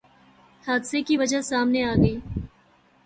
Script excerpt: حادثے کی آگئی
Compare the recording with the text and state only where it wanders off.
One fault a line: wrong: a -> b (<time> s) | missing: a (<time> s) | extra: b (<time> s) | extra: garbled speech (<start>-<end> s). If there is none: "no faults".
extra: وجہ سامنے (1.1 s)